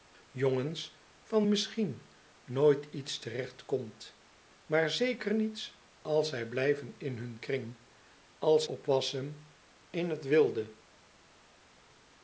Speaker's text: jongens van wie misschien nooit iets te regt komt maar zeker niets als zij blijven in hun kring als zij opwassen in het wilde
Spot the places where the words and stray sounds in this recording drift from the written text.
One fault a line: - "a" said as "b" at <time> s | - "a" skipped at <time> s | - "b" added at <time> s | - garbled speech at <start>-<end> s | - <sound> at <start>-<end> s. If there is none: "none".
- "wie" skipped at 1.5 s
- "zij" skipped at 8.6 s